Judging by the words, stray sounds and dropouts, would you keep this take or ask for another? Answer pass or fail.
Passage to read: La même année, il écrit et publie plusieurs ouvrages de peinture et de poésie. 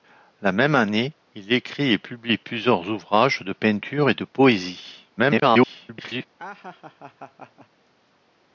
fail